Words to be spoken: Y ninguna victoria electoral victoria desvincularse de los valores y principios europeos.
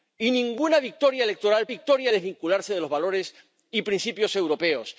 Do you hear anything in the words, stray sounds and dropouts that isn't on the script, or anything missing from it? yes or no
no